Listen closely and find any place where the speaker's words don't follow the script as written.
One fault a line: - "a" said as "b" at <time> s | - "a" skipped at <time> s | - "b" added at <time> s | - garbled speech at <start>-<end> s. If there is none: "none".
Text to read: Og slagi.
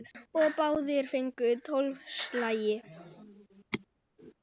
- "báðir fengu tólf" added at 0.6 s